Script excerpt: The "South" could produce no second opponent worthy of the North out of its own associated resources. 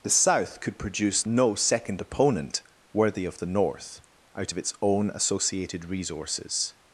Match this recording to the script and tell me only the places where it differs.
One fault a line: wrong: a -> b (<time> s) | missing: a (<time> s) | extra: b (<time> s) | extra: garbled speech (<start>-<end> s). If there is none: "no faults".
no faults